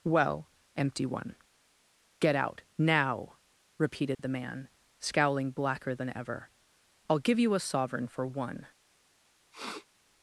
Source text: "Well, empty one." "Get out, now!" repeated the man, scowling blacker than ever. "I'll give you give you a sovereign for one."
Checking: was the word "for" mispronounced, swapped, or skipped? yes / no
no